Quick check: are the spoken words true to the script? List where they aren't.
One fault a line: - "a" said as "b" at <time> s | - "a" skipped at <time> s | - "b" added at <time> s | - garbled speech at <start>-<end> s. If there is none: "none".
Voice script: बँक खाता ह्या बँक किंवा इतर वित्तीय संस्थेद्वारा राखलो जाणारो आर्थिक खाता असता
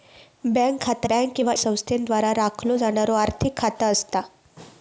- "ह्या" skipped at 1.1 s
- "इतर वित्तीय" skipped at 1.5 s